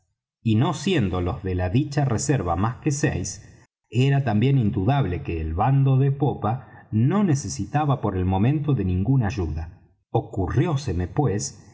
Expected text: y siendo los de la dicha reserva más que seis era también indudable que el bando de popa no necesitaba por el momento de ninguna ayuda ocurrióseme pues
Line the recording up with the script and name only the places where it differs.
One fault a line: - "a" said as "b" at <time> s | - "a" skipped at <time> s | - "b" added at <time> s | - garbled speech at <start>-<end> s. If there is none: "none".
- "no" added at 0.6 s